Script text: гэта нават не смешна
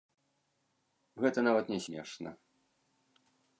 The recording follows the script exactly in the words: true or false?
true